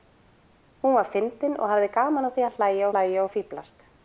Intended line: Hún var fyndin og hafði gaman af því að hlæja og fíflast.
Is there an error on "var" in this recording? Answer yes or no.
no